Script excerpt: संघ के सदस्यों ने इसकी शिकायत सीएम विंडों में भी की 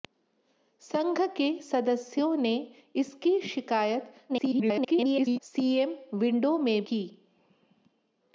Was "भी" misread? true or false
true